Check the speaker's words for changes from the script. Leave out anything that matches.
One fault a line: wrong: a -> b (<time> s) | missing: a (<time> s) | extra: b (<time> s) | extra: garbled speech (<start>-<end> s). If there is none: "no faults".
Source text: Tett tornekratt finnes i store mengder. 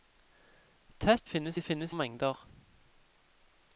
missing: tornekratt (1.3 s)
wrong: store -> finnes (1.6 s)